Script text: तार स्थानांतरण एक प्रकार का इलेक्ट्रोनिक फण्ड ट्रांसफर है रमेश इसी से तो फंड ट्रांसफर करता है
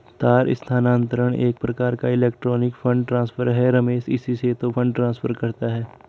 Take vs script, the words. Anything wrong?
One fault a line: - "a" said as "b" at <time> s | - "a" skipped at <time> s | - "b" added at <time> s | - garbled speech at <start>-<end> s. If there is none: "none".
none